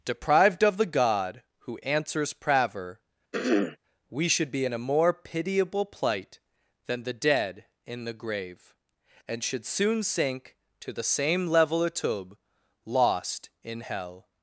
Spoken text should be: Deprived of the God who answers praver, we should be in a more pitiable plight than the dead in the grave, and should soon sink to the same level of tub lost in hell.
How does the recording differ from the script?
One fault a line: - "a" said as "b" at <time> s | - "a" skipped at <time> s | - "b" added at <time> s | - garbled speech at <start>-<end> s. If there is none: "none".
none